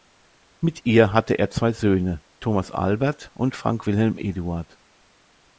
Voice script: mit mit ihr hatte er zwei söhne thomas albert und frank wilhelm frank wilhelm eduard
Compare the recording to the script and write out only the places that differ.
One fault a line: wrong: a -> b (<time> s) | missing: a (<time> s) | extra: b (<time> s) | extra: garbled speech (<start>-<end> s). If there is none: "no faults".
missing: mit (0.8 s)
missing: frank wilhelm (4.2 s)